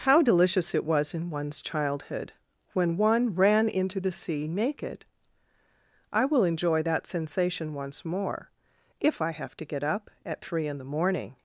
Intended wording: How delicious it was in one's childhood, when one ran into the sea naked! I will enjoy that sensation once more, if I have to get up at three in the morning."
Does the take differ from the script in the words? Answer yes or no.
no